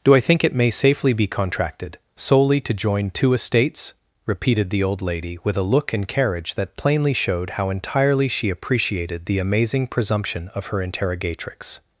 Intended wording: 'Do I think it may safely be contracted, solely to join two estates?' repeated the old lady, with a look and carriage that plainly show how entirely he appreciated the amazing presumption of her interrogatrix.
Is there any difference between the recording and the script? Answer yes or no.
yes